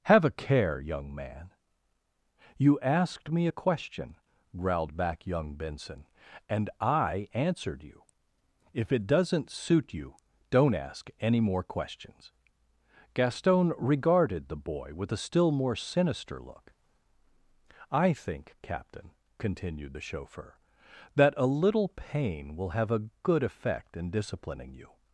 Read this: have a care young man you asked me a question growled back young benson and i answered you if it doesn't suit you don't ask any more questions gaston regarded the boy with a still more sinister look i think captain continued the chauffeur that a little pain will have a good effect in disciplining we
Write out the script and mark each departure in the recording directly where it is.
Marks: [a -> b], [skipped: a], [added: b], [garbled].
have a care young man you asked me a question growled back young benson and i answered you if it doesn't suit you don't ask any more questions gaston regarded the boy with a still more sinister look i think captain continued the chauffeur that a little pain will have a good effect in disciplining [we -> you]